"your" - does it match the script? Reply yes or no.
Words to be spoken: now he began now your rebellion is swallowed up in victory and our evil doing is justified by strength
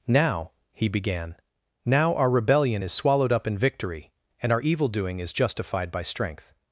no